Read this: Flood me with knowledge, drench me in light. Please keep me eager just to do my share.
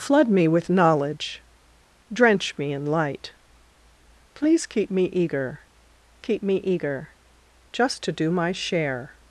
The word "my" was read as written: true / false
true